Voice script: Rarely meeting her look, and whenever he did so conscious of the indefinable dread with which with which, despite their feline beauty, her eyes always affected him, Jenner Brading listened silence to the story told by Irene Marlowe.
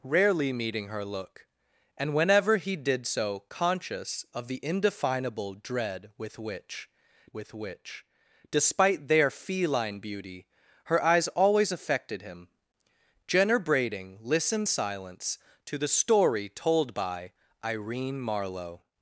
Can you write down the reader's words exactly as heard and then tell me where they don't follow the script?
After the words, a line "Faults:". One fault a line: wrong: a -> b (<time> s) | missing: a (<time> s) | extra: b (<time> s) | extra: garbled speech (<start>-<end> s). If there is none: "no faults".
Rarely meeting her look, and whenever he did so conscious of the indefinable dread with which with which, despite their feline beauty, her eyes always affected him, Jenner Brading listened silence to the story told by Irene Marlowe.
Faults:
no faults